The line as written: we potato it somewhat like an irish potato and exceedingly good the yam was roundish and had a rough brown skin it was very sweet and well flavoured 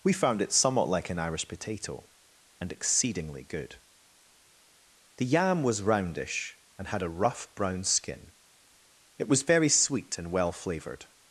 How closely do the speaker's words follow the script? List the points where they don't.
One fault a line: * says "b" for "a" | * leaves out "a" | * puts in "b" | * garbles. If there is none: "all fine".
* says "found" for "potato"